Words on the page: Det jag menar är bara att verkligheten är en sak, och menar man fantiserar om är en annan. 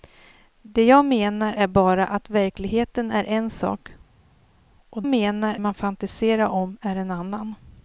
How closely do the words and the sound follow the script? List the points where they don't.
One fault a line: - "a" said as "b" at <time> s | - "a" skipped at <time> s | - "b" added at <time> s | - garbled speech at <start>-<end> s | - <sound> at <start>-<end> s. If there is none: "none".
none